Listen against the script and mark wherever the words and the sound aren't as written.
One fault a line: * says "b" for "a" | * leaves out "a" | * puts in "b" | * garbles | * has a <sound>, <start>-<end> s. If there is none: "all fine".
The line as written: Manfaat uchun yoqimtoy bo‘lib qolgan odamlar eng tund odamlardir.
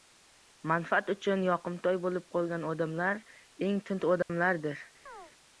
* has a dropout, 4.2-4.3 s
* has a chirp, 5.1-5.3 s